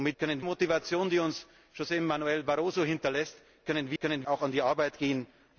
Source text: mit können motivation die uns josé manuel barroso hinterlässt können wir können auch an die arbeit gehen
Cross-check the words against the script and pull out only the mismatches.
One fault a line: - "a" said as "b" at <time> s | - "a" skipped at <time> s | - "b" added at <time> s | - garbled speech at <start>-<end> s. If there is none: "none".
none